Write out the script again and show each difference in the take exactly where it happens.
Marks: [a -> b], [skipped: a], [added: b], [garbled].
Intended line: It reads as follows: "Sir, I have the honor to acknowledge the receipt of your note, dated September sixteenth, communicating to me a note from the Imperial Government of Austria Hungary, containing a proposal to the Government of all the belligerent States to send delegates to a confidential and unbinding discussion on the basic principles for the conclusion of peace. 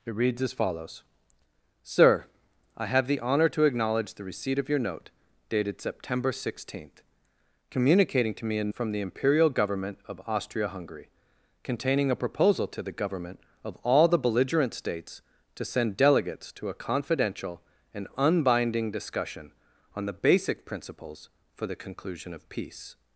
It reads as follows: "Sir, I have the honor to acknowledge the receipt of your note, dated September sixteenth, communicating to me a [skipped: note] from the Imperial Government of Austria Hungary, containing a proposal to the Government of all the belligerent States to send delegates to a confidential and unbinding discussion on the basic principles for the conclusion of peace.